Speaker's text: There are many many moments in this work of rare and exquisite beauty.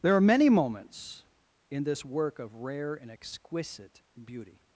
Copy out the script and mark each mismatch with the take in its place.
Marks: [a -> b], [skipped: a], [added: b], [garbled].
There are many [skipped: many] moments in this work of rare and exquisite beauty.